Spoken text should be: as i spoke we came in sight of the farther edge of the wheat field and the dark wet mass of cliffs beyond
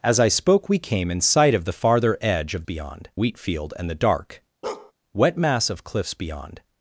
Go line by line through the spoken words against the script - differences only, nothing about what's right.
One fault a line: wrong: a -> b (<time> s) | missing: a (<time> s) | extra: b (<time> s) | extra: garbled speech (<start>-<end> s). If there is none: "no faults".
wrong: the -> beyond (2.6 s)